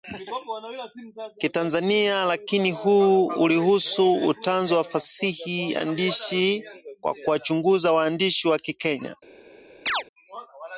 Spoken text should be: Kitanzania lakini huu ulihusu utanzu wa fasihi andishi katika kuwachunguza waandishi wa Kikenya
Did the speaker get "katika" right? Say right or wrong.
wrong